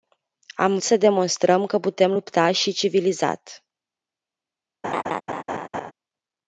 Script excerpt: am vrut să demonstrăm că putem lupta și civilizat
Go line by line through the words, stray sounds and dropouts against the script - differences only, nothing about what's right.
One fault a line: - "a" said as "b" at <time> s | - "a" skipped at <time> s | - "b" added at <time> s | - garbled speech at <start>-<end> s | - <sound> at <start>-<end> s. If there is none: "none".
- "vrut" skipped at 0.8 s
- laugh at 4.8-5.9 s